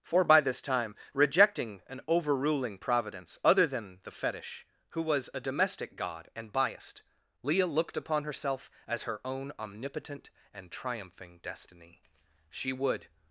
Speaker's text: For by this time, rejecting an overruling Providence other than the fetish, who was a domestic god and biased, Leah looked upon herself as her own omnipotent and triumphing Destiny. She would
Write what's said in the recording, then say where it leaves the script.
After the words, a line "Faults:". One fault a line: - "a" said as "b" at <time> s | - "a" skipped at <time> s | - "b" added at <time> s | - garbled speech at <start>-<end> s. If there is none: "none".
For by this time, rejecting an overruling Providence other than the fetish, who was a domestic god and biased, Leah looked upon herself as her own omnipotent and triumphing Destiny. She would
Faults:
none